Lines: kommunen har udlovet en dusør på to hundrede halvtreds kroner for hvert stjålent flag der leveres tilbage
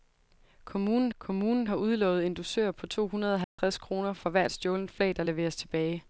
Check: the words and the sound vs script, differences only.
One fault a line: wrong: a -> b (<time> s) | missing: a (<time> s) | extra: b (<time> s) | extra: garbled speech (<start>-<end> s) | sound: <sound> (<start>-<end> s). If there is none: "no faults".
extra: kommunen (1.2 s)
sound: dropout (3.4-3.6 s)